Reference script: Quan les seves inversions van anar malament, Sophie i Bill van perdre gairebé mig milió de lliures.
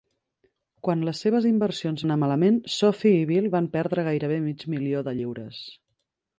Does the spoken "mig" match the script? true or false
true